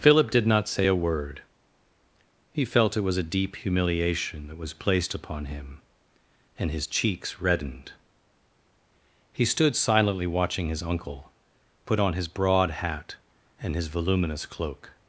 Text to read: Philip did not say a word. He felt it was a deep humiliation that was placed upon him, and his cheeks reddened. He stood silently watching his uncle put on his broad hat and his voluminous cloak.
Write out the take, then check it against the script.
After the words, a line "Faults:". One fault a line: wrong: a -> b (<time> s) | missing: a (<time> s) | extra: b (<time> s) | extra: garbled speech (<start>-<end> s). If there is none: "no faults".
Philip did not say a word. He felt it was a deep humiliation that was placed upon him, and his cheeks reddened. He stood silently watching his uncle put on his broad hat and his voluminous cloak.
Faults:
no faults